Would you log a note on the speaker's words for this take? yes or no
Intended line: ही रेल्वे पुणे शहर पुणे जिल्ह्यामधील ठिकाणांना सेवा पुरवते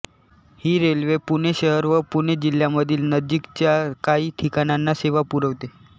yes